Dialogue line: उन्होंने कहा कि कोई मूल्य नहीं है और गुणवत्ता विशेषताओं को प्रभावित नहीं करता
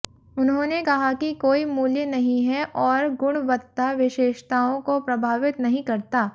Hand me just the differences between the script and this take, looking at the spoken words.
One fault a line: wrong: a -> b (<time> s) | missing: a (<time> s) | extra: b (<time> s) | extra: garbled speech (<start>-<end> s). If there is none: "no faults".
no faults